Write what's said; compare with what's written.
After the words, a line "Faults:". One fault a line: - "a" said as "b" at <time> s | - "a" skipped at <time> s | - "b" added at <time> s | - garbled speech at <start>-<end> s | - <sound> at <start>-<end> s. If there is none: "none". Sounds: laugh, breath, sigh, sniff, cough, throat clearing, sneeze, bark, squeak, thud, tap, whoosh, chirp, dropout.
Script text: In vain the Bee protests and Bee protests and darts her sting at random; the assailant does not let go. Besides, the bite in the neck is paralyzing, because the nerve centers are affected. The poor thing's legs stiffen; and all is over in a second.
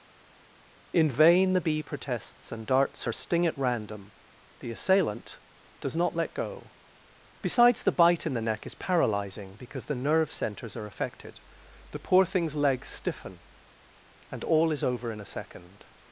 In vain the Bee protests and darts her sting at random; the assailant does not let go. Besides, the bite in the neck is paralyzing, because the nerve centers are affected. The poor thing's legs stiffen; and all is over in a second.
Faults:
- "Bee protests and" skipped at 2.7 s